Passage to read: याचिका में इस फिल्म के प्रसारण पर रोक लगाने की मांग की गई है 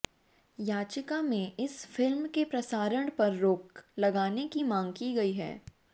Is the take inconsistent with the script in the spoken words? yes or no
no